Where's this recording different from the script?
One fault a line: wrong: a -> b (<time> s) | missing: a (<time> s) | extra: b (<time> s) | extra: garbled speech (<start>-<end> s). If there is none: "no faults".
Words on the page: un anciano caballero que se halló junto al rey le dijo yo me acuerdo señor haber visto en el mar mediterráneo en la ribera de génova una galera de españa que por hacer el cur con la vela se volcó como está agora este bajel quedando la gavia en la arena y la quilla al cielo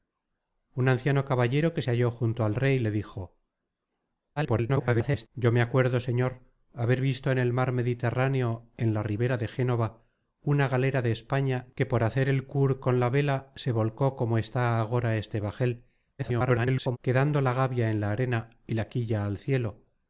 extra: garbled speech (4.4-5.3 s)
extra: garbled speech (16.2-17.0 s)